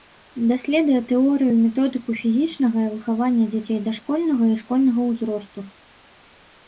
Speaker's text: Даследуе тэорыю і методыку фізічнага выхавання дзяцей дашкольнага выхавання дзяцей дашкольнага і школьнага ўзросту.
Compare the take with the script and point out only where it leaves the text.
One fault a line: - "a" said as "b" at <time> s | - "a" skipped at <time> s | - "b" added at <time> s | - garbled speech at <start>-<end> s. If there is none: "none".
- "выхавання дзяцей дашкольнага" skipped at 4.4 s